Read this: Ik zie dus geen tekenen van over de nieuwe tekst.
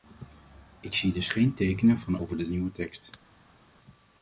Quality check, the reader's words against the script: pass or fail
pass